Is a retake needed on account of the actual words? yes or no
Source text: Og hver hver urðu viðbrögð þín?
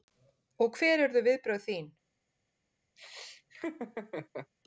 yes